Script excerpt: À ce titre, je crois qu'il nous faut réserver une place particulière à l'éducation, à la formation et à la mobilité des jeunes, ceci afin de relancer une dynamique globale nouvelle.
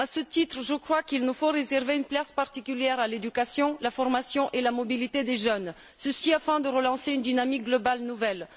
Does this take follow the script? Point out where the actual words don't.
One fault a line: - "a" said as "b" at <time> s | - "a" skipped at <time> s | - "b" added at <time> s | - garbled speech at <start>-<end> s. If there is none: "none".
none